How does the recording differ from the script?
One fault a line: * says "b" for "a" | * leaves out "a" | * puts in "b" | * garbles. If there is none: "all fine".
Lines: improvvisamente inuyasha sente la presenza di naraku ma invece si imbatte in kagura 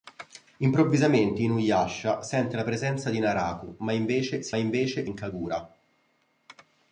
* says "invece" for "imbatte"